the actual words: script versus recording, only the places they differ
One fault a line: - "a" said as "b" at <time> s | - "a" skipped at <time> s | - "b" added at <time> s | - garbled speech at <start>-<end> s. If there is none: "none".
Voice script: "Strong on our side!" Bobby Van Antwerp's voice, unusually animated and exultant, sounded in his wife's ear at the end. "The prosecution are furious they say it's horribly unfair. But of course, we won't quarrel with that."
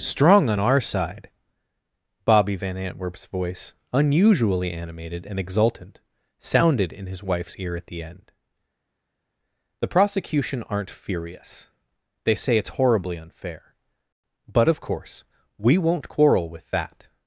- "are" said as "aren't" at 10.6 s